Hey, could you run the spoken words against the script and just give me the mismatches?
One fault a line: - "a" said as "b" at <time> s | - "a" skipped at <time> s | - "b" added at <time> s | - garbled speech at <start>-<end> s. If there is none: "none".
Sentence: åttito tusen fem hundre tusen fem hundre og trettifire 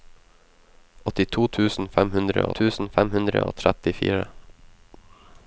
none